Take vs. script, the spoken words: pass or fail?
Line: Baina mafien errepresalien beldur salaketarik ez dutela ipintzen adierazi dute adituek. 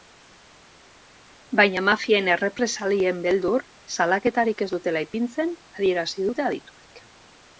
pass